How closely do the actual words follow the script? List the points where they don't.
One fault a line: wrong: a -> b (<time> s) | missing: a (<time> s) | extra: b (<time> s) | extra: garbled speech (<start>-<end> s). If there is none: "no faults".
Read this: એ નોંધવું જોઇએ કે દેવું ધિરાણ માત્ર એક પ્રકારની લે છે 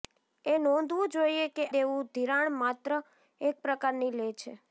no faults